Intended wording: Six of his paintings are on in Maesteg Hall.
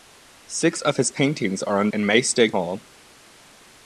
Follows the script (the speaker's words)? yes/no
yes